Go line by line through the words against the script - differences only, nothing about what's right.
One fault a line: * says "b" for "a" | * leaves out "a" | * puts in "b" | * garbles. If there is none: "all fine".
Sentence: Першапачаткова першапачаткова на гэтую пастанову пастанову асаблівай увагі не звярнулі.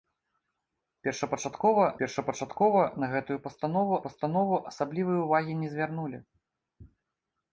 all fine